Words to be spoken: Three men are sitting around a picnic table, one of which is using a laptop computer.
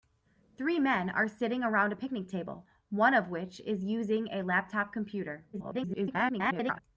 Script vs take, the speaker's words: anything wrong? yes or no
yes